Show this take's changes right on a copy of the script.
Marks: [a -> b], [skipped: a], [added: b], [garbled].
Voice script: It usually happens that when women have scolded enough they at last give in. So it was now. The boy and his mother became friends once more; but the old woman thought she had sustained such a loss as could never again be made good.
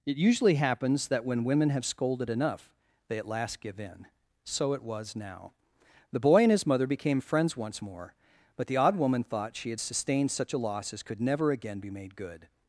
It usually happens that when women have scolded enough they at last give in. So it was now. The boy and his mother became friends once more; but the [old -> odd] woman thought she had sustained such a loss as could never again be made good.